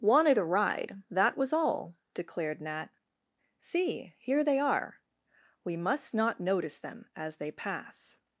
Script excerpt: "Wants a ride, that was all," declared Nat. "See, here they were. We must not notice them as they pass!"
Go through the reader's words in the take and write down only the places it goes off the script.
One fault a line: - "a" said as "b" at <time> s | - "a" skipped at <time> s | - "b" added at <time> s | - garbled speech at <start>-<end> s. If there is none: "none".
- "Wants" said as "Wanted" at 0.0 s
- "were" said as "are" at 4.6 s